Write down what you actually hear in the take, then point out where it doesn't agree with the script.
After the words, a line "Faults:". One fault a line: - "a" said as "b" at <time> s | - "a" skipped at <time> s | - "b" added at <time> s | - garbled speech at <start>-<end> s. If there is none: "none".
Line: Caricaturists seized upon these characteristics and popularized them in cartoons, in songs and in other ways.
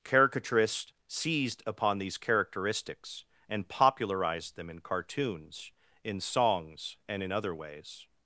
Caricaturists seized upon these characteristics and popularized them in cartoons, in songs and in other ways.
Faults:
none